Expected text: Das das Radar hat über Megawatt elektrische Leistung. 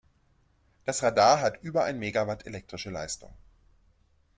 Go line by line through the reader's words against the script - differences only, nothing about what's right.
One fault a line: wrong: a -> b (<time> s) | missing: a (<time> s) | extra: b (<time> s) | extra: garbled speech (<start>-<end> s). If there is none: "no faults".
missing: das (1.0 s)
extra: ein (1.8 s)